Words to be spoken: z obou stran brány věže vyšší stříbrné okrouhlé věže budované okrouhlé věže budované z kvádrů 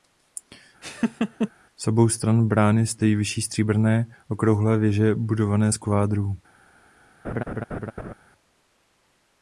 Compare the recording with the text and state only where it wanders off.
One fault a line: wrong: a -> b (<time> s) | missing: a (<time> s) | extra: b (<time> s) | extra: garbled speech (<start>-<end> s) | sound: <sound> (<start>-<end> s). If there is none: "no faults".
sound: laugh (0.8-1.5 s)
wrong: věže -> stojí (2.9 s)
missing: okrouhlé věže budované (5.7 s)
sound: laugh (7.2-8.1 s)